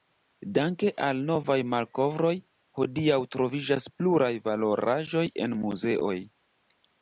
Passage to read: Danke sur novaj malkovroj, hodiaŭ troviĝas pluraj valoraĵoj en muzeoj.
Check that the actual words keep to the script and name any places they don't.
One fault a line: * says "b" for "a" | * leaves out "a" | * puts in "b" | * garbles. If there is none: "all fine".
* says "al" for "sur"